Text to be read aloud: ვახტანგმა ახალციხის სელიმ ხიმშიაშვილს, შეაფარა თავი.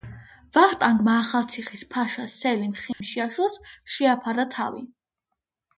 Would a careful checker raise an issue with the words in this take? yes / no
yes